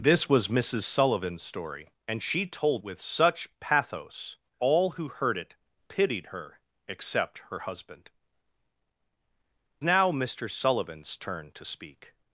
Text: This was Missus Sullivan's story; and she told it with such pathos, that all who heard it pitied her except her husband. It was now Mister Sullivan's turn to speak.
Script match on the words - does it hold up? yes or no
no